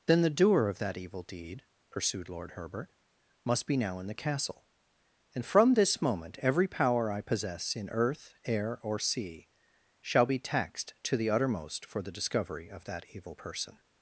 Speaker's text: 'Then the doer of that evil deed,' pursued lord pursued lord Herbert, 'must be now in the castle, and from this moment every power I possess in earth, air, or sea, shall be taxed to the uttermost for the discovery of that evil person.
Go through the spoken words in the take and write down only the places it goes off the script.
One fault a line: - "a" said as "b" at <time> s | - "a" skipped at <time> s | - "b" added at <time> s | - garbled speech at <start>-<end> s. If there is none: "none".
- "pursued lord" skipped at 2.5 s